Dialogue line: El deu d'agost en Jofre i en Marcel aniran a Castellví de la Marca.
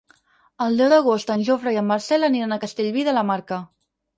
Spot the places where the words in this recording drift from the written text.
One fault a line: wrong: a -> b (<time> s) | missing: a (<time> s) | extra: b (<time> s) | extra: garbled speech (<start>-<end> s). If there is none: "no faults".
no faults